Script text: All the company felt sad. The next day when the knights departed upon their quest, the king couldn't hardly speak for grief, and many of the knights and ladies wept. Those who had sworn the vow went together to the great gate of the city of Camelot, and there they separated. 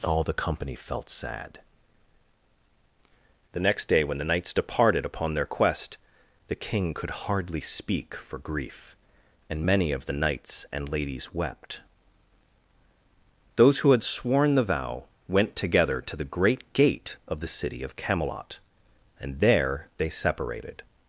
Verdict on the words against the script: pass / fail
fail